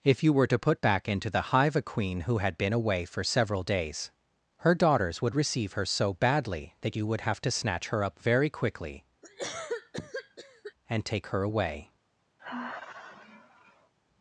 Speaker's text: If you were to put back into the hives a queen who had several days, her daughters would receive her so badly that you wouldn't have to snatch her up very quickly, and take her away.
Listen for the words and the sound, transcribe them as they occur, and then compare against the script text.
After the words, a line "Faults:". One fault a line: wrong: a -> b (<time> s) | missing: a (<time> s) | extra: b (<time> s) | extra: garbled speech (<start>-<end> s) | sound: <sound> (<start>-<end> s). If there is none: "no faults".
If you were to put back into the hive a queen who had been away for several days, her daughters would receive her so badly that you would have to snatch her up very quickly, and take her away.
Faults:
wrong: hives -> hive (1.5 s)
extra: been away for (2.6 s)
wrong: wouldn't -> would (7.1 s)
sound: cough (9.2-10.7 s)
sound: sigh (12.4-13.9 s)